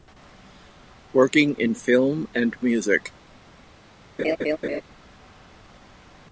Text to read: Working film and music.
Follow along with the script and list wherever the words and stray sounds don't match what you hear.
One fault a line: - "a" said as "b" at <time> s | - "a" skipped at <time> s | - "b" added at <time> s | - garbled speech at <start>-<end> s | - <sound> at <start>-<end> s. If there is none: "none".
- "in" added at 1.6 s
- laugh at 4.2-4.8 s